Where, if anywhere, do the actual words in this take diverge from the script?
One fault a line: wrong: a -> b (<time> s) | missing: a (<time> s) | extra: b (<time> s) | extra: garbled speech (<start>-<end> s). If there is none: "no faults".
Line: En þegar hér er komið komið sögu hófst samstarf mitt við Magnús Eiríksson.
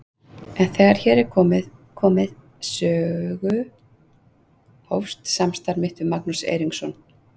no faults